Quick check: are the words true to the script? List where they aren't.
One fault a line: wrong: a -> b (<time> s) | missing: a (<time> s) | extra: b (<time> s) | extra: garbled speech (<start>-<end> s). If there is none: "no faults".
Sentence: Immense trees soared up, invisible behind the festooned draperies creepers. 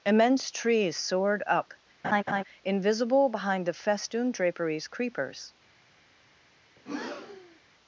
no faults